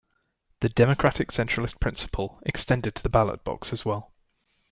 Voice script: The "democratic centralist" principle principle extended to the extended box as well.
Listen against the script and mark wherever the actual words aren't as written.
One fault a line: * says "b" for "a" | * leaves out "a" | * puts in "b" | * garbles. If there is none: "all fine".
* leaves out "principle"
* says "ballot" for "extended"